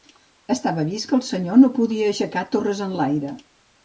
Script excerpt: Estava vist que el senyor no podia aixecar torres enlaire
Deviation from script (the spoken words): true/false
false